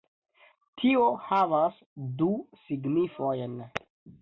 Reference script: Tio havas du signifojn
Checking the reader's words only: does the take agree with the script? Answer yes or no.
yes